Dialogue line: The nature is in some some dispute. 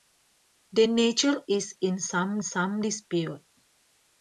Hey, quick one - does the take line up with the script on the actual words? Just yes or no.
yes